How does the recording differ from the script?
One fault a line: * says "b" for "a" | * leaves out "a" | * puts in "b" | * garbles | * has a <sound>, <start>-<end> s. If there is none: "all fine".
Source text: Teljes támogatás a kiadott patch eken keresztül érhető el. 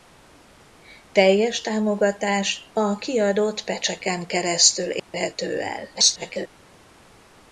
* has a dropout, 5.0-5.1 s
* garbles